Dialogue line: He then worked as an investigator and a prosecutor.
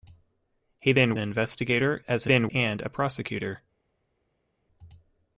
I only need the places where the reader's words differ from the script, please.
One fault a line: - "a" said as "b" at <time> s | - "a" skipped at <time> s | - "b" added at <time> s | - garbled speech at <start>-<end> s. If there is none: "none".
- "worked" said as "investigator" at 1.2 s
- "investigator" said as "then" at 2.2 s